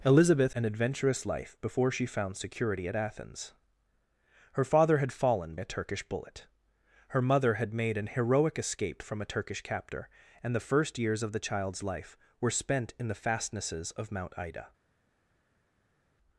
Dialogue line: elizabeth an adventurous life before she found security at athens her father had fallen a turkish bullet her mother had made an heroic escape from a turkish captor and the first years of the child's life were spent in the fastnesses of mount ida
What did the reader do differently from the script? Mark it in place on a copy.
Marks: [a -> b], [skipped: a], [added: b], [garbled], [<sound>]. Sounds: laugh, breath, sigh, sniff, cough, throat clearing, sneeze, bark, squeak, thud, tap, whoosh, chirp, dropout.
elizabeth an adventurous life before she found security at athens her father had fallen a turkish bullet her mother had made an heroic escape from a turkish captor and the first years of the child's life were spent in the fastnesses of mount ida